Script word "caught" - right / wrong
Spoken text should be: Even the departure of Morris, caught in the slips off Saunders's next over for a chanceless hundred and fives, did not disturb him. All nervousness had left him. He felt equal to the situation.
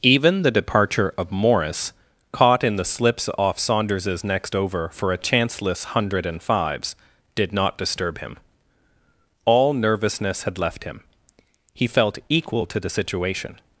right